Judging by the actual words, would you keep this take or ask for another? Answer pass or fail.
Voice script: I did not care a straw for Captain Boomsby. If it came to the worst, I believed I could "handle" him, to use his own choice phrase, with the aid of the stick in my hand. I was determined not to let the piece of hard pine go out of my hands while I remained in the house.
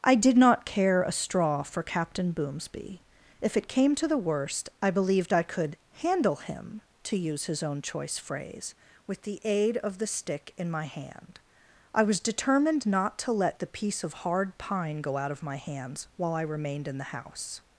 pass